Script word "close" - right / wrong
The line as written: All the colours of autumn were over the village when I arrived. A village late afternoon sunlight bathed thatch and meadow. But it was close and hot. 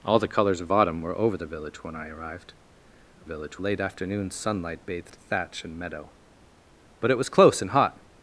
right